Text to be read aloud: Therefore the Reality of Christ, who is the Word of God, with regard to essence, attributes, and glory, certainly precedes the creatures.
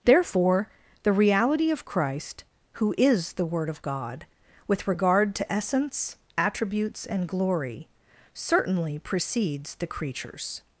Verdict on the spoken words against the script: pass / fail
pass